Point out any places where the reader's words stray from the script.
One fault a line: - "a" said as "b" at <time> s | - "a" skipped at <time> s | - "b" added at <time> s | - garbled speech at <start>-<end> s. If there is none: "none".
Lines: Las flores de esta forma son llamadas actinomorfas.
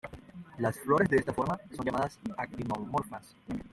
none